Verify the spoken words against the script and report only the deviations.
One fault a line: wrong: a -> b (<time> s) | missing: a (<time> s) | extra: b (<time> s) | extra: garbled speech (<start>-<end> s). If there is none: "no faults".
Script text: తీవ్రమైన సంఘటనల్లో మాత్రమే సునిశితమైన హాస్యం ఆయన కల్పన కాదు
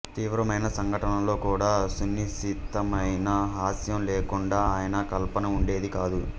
wrong: మాత్రమే -> కూడా (1.4 s)
extra: లేకుండా (4.0 s)
extra: ఉండేది (5.6 s)